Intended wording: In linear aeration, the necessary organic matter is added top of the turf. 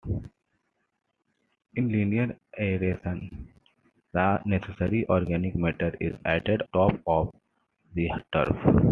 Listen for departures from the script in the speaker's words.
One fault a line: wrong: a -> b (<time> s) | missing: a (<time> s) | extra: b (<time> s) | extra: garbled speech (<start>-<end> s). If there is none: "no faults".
no faults